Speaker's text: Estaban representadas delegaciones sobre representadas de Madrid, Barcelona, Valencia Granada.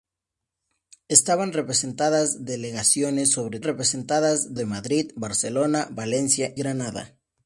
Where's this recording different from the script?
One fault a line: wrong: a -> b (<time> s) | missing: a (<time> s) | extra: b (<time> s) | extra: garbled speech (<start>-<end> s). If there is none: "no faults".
no faults